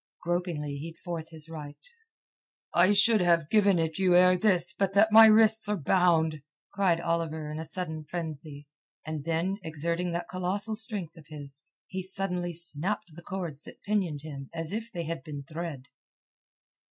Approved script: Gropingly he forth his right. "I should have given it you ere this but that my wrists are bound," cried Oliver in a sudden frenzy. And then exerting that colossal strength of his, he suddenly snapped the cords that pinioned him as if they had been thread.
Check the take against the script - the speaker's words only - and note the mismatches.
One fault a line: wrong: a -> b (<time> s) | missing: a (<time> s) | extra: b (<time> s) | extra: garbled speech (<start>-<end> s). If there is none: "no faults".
no faults